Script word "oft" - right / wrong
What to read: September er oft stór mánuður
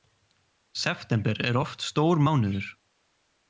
right